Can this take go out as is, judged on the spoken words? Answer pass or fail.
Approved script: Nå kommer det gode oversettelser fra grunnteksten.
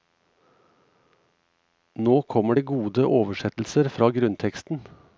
pass